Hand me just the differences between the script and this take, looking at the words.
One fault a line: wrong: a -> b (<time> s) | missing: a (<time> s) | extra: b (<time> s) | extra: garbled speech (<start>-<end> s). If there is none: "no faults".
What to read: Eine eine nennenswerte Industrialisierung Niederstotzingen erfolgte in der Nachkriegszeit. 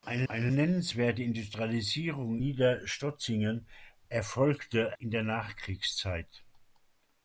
no faults